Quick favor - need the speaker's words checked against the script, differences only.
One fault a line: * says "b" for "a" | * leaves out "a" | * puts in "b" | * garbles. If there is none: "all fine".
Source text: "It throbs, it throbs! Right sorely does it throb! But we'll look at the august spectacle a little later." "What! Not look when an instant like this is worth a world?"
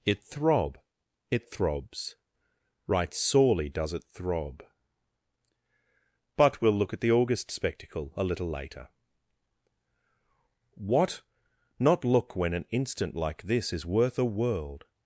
* says "throb" for "throbs"